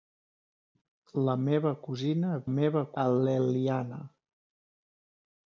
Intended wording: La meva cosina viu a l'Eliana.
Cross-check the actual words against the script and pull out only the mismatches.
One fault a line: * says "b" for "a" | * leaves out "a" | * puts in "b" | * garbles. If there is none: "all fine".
* says "meva" for "viu"